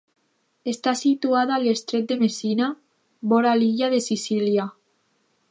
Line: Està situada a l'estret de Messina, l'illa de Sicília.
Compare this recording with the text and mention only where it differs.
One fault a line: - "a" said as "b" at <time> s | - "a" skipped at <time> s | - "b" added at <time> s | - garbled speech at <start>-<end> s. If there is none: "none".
- "vora" added at 3.3 s